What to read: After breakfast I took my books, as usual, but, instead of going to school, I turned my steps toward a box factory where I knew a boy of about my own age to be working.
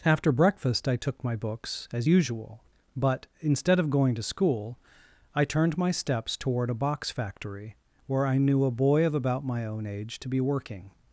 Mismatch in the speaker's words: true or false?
false